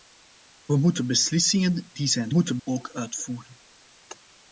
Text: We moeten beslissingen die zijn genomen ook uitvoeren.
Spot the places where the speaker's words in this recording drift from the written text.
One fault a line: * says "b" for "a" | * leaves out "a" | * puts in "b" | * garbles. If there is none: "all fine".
* says "moeten" for "genomen"